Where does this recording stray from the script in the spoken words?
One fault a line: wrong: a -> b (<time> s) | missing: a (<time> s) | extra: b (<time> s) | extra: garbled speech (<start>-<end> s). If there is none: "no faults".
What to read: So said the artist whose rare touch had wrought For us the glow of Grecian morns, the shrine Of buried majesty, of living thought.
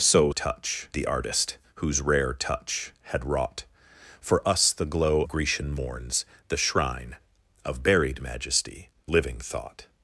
wrong: said -> touch (0.3 s)
missing: of (5.2 s)
missing: of (8.9 s)